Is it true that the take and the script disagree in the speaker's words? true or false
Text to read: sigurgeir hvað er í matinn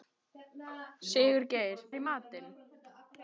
true